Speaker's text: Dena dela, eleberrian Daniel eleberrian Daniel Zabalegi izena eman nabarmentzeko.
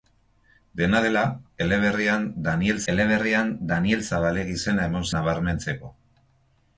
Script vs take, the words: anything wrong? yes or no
no